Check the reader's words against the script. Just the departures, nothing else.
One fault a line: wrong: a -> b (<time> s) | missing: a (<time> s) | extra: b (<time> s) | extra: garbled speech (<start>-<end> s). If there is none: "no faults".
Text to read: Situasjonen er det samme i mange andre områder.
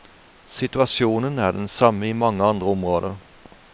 wrong: det -> den (1.5 s)